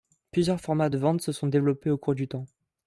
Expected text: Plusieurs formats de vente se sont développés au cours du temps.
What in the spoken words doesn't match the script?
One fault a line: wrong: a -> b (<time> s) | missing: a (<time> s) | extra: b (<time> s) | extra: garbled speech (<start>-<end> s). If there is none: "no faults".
no faults